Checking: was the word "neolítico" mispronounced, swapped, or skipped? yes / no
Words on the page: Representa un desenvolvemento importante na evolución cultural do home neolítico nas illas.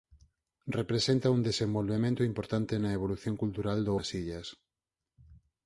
yes